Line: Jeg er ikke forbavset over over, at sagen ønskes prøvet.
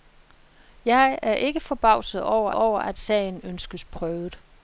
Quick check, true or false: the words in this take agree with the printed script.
true